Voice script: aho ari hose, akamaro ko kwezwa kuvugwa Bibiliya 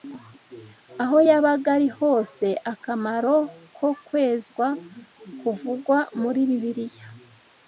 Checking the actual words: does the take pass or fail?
fail